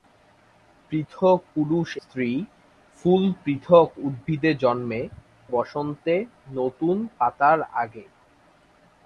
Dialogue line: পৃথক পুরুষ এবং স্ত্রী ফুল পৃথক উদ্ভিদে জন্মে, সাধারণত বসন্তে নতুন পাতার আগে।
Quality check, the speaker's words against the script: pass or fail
fail